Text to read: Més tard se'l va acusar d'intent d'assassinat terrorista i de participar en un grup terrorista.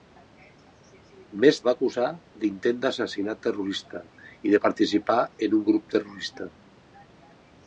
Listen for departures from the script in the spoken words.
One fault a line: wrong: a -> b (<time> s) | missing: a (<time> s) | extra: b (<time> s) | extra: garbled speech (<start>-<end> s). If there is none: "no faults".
missing: tard se'l (1.6 s)